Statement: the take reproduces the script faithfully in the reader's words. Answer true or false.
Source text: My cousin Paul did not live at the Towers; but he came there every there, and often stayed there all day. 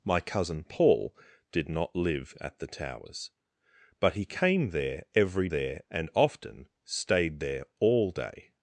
true